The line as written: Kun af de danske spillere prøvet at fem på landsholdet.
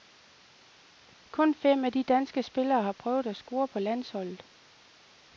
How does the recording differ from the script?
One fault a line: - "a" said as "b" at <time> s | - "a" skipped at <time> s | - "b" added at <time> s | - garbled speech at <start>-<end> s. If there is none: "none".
- "fem" added at 1.5 s
- "har" added at 2.8 s
- "fem" said as "score" at 3.4 s